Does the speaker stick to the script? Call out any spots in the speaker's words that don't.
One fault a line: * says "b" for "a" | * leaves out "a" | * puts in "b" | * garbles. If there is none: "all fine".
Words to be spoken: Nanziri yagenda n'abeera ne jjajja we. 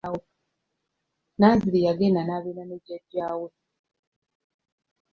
all fine